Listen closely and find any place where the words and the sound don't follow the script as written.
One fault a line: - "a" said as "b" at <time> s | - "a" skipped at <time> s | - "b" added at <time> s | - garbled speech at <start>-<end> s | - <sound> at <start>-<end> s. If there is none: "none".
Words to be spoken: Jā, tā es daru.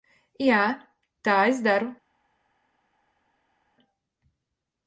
none